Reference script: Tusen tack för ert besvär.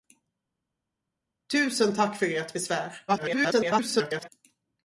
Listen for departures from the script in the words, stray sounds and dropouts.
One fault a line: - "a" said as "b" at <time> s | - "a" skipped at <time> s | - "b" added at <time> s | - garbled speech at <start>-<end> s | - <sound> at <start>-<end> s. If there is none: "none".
- garbled speech at 3.1-4.3 s